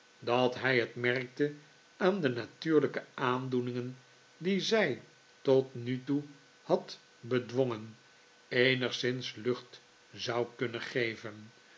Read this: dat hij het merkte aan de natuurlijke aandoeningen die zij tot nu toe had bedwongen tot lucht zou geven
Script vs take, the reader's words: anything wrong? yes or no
yes